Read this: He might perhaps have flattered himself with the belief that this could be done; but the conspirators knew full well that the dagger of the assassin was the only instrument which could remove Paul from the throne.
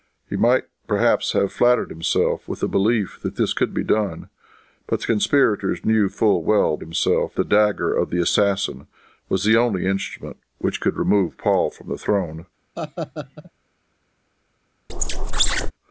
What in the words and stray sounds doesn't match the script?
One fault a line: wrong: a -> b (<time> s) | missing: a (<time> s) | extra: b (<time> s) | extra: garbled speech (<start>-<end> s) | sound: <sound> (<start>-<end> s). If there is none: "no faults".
wrong: that -> himself (6.8 s)
sound: laugh (12.8-13.5 s)
sound: squeak (14.9-15.7 s)